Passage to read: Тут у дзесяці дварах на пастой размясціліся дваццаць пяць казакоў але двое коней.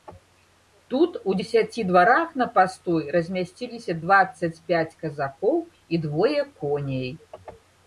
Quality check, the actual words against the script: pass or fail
fail